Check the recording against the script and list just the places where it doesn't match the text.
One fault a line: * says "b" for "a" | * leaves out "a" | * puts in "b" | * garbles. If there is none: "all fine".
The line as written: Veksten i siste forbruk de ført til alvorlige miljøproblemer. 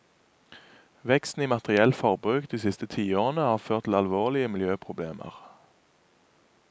* says "materielt" for "siste"
* puts in "siste tiårene har"